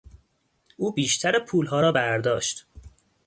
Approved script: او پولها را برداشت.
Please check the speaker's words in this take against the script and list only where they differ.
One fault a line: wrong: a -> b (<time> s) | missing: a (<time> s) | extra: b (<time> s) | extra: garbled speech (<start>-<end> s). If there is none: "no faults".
extra: بیشتر (0.9 s)